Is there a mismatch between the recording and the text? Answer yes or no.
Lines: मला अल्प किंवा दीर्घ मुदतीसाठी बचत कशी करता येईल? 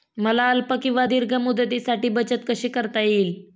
no